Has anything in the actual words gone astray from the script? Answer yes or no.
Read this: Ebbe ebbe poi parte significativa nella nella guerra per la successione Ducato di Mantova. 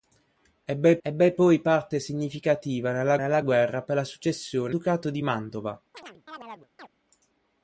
no